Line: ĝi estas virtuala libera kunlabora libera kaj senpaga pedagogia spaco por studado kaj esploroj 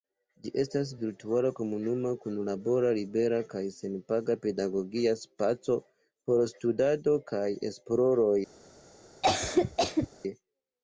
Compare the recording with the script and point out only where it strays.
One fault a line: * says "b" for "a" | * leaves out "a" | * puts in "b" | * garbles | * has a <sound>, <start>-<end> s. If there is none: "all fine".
* says "komunuma" for "libera"
* has a cough, 9.2-10.1 s